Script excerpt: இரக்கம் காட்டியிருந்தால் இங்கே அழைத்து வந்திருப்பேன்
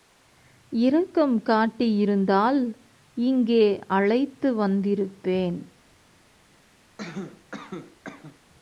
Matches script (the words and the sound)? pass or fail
fail